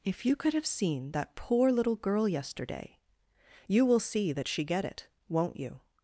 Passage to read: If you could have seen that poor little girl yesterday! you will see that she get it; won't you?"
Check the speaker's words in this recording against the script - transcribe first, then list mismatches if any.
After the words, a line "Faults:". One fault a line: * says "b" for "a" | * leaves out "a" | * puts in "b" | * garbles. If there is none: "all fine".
If you could have seen that poor little girl yesterday! you will see that she get it; won't you?"
Faults:
all fine